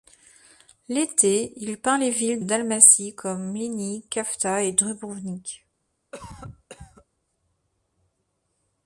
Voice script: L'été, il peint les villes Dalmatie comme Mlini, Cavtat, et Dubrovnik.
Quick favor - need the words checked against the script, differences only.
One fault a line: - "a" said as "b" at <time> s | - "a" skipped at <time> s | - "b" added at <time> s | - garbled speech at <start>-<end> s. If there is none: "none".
none